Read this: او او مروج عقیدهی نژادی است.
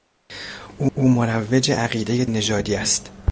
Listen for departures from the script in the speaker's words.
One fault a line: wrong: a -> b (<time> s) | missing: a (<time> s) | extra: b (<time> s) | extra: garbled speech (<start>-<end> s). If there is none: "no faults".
no faults